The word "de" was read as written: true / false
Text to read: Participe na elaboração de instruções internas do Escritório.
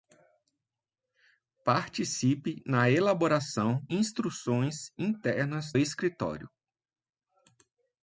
false